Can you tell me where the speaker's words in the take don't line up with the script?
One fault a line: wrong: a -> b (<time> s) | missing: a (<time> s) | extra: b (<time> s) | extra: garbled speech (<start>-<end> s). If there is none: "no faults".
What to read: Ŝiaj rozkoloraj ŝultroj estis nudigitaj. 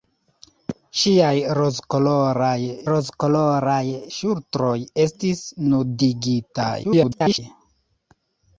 extra: rozkoloraj (2.9 s)
extra: garbled speech (6.8-7.4 s)